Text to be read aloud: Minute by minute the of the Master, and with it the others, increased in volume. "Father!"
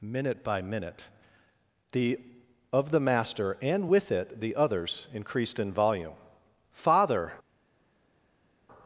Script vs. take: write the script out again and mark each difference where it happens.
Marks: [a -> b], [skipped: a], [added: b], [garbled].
Minute by minute the of the Master, and with it the others, increased in volume. "Father!"